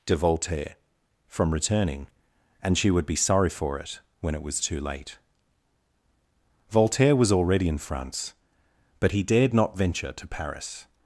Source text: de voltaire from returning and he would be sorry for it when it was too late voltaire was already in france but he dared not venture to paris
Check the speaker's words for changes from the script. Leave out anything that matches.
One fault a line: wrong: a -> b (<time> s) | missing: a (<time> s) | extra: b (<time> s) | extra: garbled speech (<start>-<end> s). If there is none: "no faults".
wrong: he -> she (2.8 s)